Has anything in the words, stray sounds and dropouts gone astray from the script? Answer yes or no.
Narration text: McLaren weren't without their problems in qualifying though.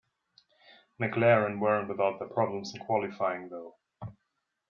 no